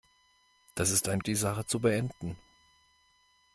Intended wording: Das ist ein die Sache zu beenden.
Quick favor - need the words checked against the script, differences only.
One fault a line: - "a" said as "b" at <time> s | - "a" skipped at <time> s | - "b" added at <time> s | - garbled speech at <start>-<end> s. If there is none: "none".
none